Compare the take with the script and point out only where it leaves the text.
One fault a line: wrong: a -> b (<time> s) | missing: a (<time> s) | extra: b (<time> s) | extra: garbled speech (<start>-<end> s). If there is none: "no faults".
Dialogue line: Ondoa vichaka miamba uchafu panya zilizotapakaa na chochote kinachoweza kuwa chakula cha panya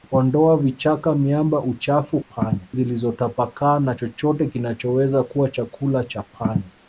no faults